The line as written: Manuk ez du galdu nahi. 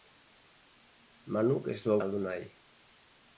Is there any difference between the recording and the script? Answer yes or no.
no